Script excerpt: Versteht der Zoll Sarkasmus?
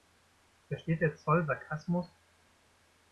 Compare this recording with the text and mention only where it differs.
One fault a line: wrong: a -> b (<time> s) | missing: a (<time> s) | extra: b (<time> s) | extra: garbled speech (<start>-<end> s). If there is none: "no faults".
no faults